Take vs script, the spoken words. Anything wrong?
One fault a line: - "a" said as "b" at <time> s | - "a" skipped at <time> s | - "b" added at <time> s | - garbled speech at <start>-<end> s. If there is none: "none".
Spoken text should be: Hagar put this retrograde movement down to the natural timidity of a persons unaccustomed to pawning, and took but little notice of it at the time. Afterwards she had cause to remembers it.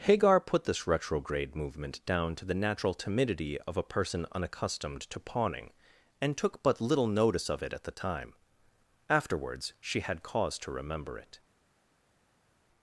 - "persons" said as "person" at 3.8 s
- "remembers" said as "remember" at 10.7 s